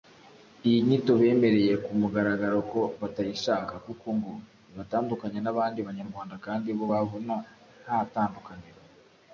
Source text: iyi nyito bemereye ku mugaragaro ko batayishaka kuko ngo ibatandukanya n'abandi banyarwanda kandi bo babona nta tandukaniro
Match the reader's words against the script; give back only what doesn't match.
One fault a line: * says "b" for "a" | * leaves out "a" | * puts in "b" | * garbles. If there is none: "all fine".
all fine